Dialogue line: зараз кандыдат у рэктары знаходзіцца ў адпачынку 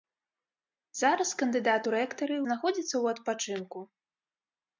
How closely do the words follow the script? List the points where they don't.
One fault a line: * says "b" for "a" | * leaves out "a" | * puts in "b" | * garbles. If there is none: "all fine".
all fine